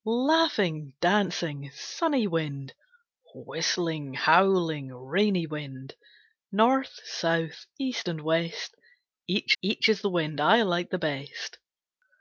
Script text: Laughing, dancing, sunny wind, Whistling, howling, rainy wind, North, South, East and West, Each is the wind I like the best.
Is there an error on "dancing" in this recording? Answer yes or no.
no